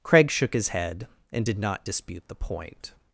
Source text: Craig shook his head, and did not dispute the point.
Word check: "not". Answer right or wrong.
right